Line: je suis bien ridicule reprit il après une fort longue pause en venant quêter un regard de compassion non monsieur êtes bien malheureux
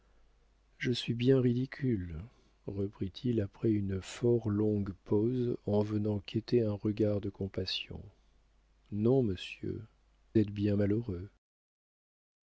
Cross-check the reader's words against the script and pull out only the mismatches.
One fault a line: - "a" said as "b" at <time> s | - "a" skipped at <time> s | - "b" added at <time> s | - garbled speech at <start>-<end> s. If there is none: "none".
none